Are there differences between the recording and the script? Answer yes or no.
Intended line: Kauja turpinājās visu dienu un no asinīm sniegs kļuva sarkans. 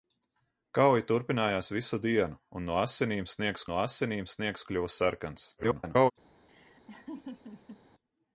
yes